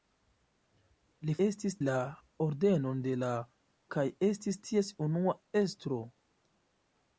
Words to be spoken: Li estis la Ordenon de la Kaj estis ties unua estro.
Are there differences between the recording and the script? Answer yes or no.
no